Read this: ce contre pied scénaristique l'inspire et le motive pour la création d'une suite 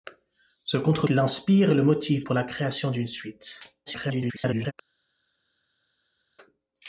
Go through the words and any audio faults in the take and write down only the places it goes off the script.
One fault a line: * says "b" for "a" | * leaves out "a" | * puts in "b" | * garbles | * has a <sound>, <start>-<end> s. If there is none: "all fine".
* leaves out "pied scénaristique"
* garbles